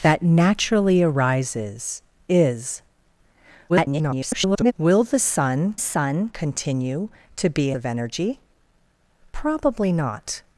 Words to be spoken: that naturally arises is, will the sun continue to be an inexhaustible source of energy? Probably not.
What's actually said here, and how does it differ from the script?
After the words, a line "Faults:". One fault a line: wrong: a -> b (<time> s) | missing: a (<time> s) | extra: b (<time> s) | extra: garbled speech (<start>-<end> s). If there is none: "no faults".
that naturally arises is, [garbled] will the sun sun continue to be of energy? Probably not.
Faults:
extra: garbled speech (3.7-4.7 s)
extra: sun (5.8 s)
missing: an inexhaustible source (7.7 s)